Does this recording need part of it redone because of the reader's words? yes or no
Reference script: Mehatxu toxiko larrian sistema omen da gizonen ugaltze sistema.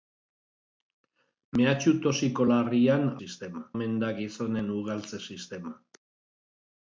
no